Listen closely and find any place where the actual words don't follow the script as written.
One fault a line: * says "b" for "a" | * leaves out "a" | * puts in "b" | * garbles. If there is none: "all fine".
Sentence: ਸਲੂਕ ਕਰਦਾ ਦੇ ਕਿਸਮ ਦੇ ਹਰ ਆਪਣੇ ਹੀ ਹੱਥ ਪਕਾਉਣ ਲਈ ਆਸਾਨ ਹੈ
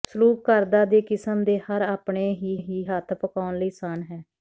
* puts in "ਹੀ"